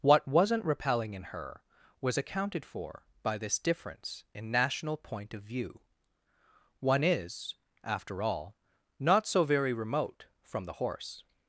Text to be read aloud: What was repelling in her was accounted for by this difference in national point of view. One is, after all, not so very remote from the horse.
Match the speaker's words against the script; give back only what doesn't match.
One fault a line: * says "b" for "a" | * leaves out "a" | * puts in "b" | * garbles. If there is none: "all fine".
* says "wasn't" for "was"